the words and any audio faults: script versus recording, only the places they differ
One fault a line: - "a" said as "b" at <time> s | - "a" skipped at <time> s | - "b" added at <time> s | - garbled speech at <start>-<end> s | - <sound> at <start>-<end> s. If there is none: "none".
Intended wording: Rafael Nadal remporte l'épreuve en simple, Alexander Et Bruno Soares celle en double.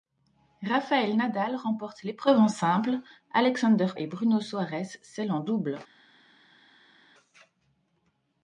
none